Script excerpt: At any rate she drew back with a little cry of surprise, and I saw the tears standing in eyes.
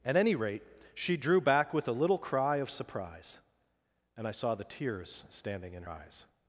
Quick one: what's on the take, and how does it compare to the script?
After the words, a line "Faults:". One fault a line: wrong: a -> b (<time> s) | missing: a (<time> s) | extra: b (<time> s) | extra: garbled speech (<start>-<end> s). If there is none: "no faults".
At any rate she drew back with a little cry of surprise, and I saw the tears standing in eyes.
Faults:
no faults